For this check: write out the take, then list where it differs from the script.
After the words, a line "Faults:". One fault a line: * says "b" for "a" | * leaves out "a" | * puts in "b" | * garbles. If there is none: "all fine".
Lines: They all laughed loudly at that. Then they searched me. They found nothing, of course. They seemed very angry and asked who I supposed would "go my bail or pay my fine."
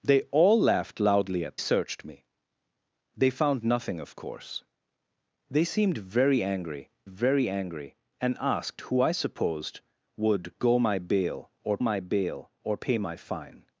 They all laughed loudly at searched me. They found nothing, of course. They seemed very angry very angry and asked who I supposed would "go my bail or my bail or pay my fine."
Faults:
* leaves out "that Then they"
* puts in "very angry"
* puts in "my bail or"